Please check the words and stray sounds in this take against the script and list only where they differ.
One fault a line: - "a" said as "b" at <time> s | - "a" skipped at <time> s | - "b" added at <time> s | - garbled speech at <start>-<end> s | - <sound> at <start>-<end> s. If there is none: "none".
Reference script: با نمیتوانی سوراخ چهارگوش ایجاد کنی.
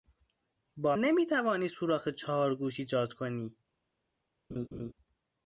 - laugh at 4.5-4.9 s